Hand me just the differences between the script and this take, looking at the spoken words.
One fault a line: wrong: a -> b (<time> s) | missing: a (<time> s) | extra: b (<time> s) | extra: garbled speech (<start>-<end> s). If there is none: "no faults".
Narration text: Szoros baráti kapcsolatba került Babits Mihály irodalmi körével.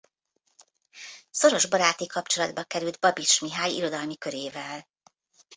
no faults